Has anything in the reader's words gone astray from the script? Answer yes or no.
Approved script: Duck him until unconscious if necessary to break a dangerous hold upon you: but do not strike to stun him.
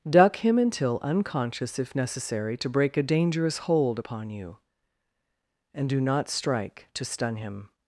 yes